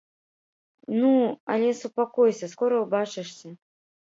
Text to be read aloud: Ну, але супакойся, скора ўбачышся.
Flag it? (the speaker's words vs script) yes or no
no